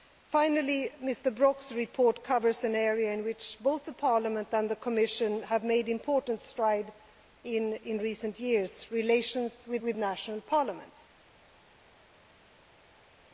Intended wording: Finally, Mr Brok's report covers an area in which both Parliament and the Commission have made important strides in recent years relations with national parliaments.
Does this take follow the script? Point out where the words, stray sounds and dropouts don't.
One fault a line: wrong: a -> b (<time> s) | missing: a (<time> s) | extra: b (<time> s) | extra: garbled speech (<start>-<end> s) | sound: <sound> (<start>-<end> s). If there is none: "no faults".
extra: with (9.8 s)